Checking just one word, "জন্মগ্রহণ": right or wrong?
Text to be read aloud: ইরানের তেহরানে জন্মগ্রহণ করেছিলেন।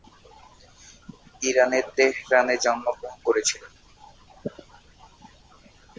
right